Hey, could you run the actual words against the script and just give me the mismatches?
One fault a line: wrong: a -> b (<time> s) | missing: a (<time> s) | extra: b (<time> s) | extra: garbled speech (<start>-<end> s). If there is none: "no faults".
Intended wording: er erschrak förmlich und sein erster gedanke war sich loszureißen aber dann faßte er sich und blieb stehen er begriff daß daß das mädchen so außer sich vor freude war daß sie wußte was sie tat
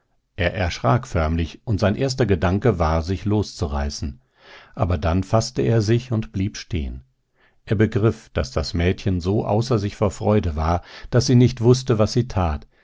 missing: daß (8.5 s)
extra: nicht (11.3 s)